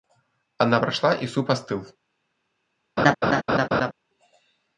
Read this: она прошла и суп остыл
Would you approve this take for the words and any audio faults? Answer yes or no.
no